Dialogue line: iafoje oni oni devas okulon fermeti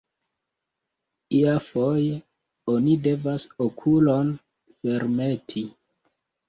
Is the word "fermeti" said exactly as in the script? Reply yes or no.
yes